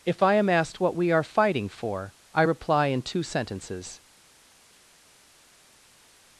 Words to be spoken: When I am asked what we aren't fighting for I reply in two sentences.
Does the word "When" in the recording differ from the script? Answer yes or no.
yes